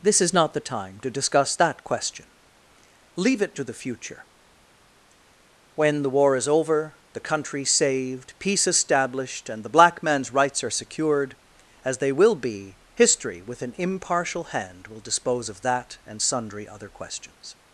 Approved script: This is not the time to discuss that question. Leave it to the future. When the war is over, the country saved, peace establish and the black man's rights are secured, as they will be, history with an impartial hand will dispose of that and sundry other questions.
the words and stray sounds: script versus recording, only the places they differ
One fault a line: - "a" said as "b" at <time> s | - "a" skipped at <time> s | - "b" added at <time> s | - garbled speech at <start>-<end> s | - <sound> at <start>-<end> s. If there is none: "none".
- "establish" said as "established" at 8.7 s